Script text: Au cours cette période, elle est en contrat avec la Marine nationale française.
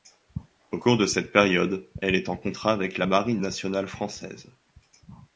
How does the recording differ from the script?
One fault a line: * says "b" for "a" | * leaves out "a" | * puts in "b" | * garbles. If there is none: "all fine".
* puts in "de"